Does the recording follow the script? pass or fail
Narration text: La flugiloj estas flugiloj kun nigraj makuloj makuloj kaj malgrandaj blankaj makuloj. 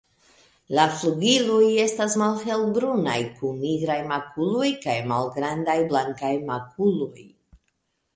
fail